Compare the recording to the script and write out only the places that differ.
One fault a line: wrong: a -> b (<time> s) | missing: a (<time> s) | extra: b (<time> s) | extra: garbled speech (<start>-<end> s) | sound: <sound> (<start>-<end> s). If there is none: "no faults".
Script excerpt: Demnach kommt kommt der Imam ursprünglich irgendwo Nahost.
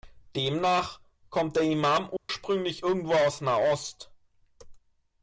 missing: kommt (1.6 s)
sound: dropout (2.2-2.3 s)
extra: aus (3.1 s)